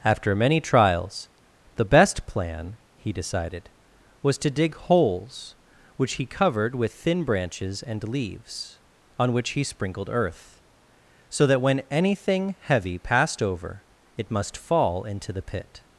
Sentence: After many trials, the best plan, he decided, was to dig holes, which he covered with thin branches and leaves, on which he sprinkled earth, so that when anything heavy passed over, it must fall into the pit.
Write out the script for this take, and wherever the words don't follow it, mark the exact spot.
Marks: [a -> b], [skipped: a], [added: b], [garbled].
After many trials, the best plan, he decided, was to dig holes, which he covered with thin branches and leaves, on which he sprinkled earth, so that when anything heavy passed over, it must fall into the pit.